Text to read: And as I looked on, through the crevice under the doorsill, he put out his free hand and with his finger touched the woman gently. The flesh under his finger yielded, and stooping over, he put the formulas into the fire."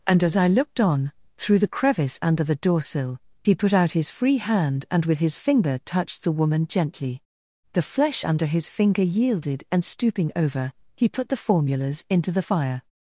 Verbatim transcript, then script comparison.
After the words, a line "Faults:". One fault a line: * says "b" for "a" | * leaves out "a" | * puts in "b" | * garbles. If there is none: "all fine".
And as I looked on, through the crevice under the doorsill, he put out his free hand and with his finger touched the woman gently. The flesh under his finger yielded, and stooping over, he put the formulas into the fire."
Faults:
all fine